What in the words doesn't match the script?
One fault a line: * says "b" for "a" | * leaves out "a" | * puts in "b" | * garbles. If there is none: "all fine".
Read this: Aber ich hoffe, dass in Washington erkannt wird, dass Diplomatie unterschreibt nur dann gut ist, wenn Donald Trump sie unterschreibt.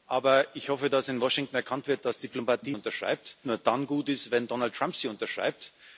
all fine